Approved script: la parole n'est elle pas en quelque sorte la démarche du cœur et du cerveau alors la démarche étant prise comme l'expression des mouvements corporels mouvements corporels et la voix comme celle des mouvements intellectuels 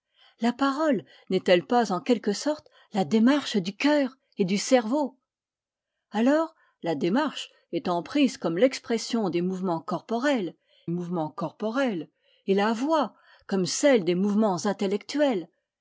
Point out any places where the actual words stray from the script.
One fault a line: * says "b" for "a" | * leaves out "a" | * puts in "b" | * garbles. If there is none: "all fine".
all fine